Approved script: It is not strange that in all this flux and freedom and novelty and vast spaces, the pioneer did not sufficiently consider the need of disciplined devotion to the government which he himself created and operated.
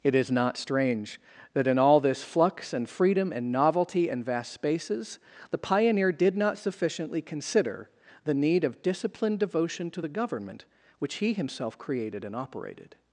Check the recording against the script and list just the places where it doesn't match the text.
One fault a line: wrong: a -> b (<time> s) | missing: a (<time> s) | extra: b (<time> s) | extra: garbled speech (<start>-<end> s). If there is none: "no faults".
no faults